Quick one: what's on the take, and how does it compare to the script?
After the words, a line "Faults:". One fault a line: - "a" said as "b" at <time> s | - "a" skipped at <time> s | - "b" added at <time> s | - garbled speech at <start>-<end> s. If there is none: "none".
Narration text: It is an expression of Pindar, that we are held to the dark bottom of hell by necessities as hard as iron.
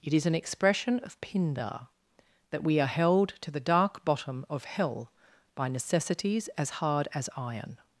It is an expression of Pindar, that we are held to the dark bottom of hell by necessities as hard as iron.
Faults:
none